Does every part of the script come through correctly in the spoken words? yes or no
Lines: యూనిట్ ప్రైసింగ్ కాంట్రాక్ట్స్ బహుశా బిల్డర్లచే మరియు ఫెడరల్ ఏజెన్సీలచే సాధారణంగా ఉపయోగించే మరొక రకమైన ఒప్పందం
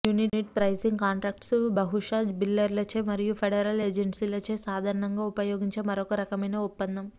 yes